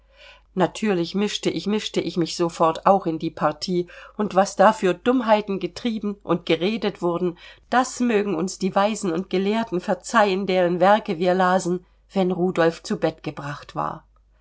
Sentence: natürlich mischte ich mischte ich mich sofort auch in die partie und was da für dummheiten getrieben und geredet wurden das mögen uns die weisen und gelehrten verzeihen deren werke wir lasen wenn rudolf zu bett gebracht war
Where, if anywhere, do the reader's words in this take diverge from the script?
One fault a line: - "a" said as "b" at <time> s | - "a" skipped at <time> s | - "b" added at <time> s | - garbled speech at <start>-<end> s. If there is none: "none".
none